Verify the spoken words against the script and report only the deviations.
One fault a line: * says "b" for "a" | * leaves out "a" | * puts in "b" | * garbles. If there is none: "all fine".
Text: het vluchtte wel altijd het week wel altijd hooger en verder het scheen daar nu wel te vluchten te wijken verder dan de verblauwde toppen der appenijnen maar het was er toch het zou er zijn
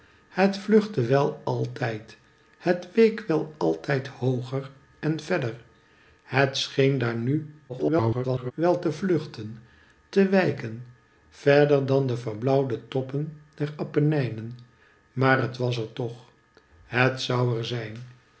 * garbles